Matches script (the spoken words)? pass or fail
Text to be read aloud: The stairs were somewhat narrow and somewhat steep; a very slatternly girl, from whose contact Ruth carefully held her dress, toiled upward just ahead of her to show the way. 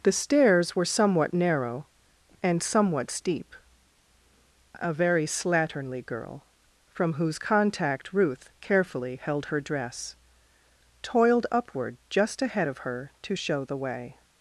pass